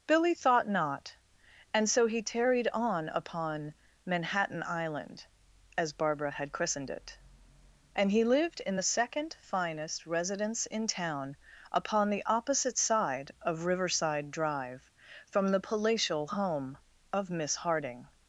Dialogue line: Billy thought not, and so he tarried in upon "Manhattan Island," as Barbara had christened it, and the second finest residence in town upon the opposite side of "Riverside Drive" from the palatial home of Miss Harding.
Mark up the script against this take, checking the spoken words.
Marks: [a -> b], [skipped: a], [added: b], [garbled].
Billy thought not, and so he tarried [in -> on] upon "Manhattan Island," as Barbara had christened it, and [added: he lived in] the second finest residence in town upon the opposite side of "Riverside Drive" from the palatial home of Miss Harding.